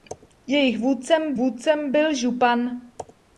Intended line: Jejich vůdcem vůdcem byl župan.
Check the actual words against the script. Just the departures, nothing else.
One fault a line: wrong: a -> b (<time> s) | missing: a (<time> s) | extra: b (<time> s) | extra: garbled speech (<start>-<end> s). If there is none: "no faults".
no faults